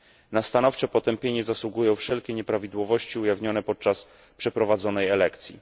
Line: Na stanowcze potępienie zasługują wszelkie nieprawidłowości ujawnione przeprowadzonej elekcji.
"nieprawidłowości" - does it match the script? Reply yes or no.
yes